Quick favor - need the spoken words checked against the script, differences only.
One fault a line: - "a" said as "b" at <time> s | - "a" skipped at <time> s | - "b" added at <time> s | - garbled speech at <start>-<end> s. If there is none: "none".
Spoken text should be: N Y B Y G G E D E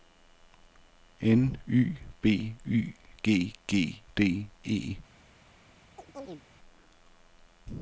- "E" skipped at 4.0 s